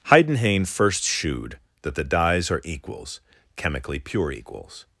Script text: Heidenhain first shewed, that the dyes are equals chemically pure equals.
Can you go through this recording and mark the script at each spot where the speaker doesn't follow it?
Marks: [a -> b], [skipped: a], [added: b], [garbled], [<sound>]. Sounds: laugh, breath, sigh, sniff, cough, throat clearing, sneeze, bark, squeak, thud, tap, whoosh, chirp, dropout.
Heidenhain first shewed, that the dyes are equals chemically pure equals.